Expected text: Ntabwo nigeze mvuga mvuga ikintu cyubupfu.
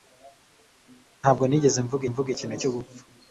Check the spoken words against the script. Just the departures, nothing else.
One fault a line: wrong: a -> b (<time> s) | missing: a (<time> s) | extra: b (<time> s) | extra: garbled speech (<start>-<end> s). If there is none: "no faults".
no faults